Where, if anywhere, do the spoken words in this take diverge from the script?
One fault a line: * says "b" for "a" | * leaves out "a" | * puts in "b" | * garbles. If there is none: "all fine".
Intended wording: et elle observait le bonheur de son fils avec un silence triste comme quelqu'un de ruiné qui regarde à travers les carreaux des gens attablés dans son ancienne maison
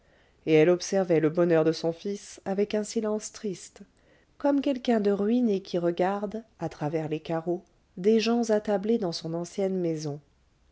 all fine